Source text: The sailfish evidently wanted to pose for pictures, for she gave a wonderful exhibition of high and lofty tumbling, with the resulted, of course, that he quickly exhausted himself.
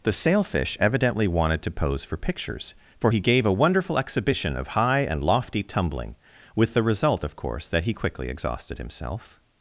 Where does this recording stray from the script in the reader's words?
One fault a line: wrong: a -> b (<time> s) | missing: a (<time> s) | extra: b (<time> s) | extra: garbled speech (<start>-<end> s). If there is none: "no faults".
wrong: she -> he (3.1 s)
wrong: resulted -> result (6.8 s)